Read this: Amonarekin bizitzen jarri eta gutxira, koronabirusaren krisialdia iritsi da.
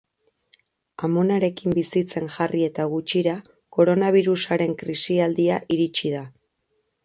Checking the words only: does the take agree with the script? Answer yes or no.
yes